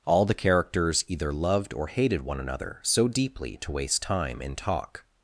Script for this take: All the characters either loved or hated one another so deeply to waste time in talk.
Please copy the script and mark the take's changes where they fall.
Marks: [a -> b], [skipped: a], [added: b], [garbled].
All the characters either loved or hated one another so deeply to waste time in talk.